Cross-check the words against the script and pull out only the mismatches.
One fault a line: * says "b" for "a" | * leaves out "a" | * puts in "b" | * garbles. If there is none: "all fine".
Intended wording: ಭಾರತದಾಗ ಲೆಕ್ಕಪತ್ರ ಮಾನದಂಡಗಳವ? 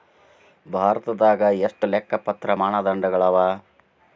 * puts in "ಎಷ್ಟ"